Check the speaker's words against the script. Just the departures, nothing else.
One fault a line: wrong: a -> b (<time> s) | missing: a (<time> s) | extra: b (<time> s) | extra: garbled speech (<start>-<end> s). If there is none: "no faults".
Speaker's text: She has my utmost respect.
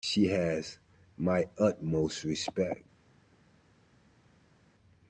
no faults